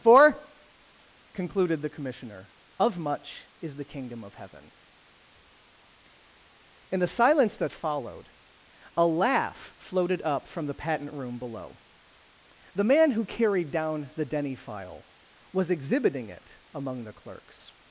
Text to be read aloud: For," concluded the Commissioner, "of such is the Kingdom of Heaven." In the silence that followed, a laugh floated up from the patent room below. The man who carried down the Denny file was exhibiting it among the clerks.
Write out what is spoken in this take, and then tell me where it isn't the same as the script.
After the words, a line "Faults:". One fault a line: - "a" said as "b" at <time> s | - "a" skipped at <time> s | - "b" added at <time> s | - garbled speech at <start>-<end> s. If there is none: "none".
For," concluded the Commissioner, "of much is the Kingdom of Heaven." In the silence that followed, a laugh floated up from the patent room below. The man who carried down the Denny file was exhibiting it among the clerks.
Faults:
- "such" said as "much" at 3.0 s